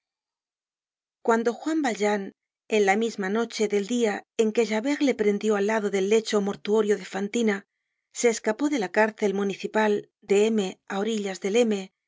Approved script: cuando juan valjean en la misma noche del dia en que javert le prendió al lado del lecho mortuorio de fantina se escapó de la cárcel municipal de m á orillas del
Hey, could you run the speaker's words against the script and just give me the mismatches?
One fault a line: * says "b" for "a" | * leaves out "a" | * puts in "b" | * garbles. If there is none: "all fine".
all fine